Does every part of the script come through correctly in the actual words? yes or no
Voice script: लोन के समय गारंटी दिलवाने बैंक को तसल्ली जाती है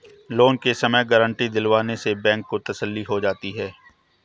no